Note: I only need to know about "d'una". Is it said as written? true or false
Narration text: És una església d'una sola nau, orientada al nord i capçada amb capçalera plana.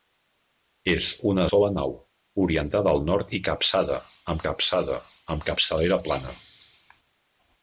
false